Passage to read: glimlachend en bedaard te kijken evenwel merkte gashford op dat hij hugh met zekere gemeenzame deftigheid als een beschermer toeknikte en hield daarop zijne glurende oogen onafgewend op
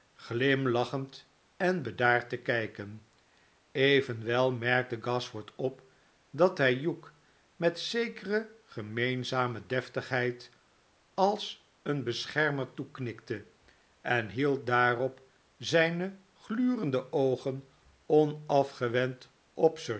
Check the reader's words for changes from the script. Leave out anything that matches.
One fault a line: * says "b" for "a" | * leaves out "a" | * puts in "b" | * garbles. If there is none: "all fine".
all fine